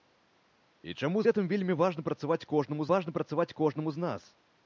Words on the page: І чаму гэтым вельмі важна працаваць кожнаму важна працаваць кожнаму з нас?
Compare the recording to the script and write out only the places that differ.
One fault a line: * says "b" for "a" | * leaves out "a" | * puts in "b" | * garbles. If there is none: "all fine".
all fine